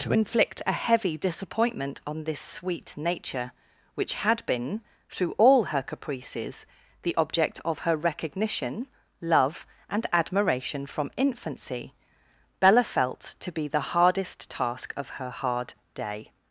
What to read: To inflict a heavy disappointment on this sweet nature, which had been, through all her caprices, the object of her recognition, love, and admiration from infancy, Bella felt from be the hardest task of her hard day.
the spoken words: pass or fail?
fail